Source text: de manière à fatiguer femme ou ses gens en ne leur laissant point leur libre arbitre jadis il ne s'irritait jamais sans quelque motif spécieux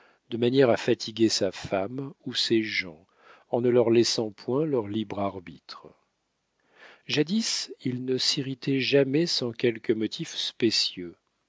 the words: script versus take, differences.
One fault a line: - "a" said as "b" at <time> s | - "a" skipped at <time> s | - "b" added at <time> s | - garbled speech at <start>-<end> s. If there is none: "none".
- "sa" added at 1.3 s